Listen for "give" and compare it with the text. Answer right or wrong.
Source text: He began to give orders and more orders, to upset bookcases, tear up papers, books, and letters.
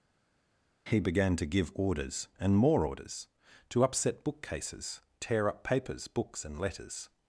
right